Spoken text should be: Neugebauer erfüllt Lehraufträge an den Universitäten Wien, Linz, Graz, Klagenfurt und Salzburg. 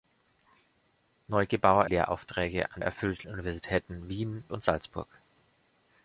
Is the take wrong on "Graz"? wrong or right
wrong